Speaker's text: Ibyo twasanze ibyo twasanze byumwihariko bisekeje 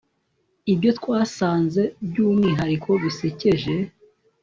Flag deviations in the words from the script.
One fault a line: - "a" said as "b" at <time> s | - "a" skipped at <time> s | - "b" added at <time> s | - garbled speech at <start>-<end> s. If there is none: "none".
- "ibyo twasanze" skipped at 1.8 s